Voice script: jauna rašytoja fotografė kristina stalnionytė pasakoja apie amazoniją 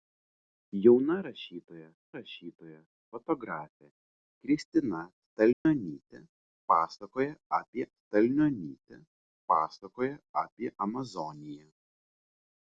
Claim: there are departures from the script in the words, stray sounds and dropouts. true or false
true